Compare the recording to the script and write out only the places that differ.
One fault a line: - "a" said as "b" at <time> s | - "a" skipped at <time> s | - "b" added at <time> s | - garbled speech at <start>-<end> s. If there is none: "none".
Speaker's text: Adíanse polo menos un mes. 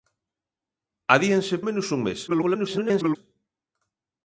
- "polo" skipped at 1.6 s
- garbled speech at 2.3-3.2 s